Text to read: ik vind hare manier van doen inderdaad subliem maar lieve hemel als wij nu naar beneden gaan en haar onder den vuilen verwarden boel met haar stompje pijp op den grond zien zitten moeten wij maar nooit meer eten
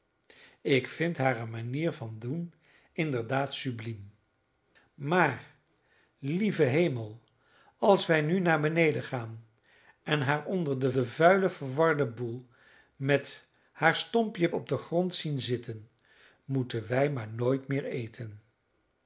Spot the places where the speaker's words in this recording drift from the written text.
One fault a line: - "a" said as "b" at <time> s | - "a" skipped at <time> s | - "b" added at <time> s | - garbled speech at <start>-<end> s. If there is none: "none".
- "den" added at 10.9 s
- "pijp" skipped at 14.5 s